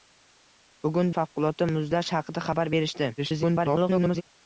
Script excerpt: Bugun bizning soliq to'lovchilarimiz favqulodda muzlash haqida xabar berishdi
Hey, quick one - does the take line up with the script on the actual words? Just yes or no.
no